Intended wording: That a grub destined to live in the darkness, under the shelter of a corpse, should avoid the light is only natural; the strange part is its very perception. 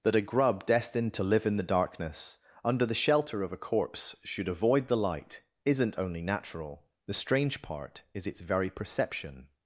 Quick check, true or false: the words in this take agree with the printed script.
false